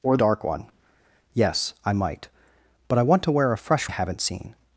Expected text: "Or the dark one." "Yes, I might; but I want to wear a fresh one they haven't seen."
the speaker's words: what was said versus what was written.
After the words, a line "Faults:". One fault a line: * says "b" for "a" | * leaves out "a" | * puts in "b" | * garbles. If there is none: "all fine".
"Or dark one." "Yes, I might; but I want to wear a fresh haven't seen."
Faults:
* leaves out "the"
* leaves out "one they"